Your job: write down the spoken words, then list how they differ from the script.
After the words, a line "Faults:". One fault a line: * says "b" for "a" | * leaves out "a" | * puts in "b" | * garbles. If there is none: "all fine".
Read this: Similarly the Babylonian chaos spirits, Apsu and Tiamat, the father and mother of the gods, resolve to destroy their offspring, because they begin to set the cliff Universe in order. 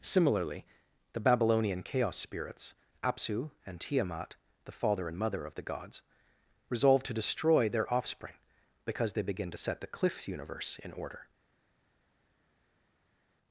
Similarly the Babylonian chaos spirits, Apsu and Tiamat, the father and mother of the gods, resolve to destroy their offspring, because they begin to set the cliff Universe in order.
Faults:
all fine